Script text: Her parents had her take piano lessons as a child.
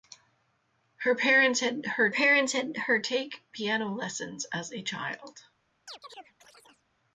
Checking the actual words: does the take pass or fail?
fail